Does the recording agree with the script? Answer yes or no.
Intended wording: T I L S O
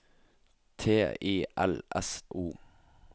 yes